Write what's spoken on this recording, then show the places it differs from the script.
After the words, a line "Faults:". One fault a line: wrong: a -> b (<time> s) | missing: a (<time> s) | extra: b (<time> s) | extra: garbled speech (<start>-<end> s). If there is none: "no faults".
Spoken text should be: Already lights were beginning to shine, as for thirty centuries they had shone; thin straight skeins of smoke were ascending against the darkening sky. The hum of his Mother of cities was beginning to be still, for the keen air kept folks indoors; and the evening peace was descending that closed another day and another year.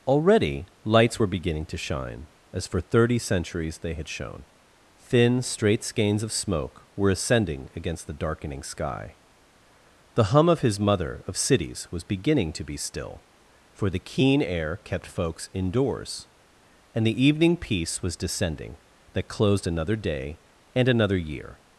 Already lights were beginning to shine, as for thirty centuries they had shone; thin straight skeins of smoke were ascending against the darkening sky. The hum of his Mother of cities was beginning to be still, for the keen air kept folks indoors; and the evening peace was descending that closed another day and another year.
Faults:
no faults